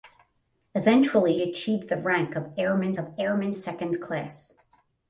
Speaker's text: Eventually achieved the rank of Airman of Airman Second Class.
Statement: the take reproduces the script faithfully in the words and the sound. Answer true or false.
true